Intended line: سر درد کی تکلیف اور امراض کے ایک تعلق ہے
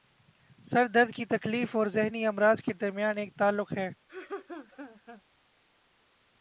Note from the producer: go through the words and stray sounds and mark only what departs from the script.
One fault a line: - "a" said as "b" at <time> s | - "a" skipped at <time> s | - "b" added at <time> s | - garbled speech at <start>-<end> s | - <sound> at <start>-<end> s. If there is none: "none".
- "ذہنی" added at 1.9 s
- "درمیان" added at 2.7 s
- laugh at 4.1-5.2 s